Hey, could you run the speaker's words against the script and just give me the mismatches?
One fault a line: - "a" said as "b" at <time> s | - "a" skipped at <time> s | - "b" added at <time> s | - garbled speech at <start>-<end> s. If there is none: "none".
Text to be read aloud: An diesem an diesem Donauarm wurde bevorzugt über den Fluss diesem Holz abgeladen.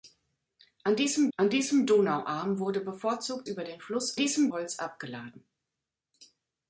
none